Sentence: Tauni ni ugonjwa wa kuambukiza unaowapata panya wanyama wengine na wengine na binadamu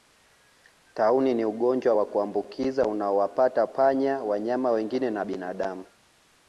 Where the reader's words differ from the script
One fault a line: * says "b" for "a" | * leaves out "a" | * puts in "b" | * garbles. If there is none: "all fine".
* leaves out "wengine na"